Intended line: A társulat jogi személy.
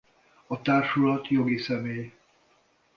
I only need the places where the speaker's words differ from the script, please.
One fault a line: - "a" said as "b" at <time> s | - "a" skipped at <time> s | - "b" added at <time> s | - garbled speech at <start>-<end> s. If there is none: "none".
none